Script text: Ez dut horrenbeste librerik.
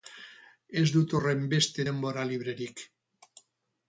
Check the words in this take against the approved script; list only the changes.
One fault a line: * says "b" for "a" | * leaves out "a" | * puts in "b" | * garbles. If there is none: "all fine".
* puts in "denbora"